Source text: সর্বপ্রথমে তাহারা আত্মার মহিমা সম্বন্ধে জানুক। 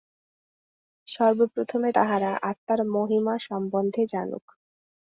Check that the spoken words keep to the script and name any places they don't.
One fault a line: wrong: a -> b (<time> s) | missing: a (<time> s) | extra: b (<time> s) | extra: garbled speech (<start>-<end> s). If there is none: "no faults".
no faults